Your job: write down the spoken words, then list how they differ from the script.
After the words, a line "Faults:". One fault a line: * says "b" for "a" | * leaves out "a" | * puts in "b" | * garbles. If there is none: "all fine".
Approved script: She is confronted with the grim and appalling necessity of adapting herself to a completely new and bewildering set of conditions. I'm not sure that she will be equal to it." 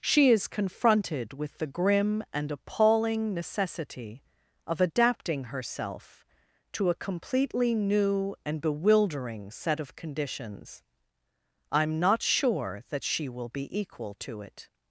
She is confronted with the grim and appalling necessity of adapting herself to a completely new and bewildering set of conditions. I'm not sure that she will be equal to it."
Faults:
all fine